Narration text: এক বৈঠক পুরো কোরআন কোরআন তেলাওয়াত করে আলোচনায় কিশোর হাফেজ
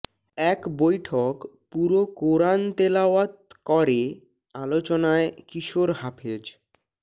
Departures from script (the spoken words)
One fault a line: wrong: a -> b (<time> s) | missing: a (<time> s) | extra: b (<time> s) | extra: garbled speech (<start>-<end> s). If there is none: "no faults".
missing: কোরআন (2.6 s)